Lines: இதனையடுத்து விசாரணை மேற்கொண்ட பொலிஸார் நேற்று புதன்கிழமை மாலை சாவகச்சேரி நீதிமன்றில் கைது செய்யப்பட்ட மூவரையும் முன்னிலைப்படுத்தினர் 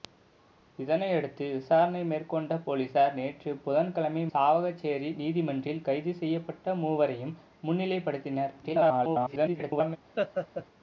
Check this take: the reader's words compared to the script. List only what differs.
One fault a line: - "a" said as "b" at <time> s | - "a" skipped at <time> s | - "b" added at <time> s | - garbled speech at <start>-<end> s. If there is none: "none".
- "மாலை" skipped at 4.2 s
- garbled speech at 8.6-10.0 s